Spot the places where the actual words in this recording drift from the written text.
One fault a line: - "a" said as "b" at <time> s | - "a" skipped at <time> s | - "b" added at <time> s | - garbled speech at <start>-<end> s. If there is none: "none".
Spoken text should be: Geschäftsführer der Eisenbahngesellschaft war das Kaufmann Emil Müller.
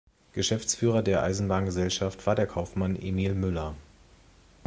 - "das" said as "der" at 2.3 s